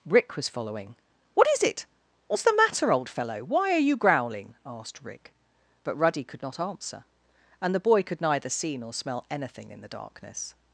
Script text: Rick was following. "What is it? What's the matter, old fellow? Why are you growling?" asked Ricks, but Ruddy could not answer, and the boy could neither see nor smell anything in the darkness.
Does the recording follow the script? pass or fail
fail